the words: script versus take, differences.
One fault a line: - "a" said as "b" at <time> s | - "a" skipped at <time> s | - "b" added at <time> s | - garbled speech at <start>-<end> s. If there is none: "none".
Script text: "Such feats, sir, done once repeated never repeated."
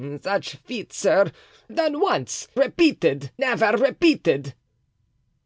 none